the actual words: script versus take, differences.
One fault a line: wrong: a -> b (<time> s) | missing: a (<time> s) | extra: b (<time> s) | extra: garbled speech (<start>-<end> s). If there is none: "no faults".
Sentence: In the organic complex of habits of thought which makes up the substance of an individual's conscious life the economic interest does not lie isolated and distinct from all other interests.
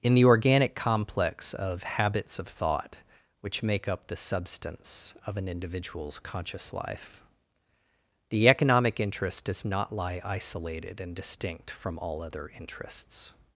wrong: makes -> make (3.6 s)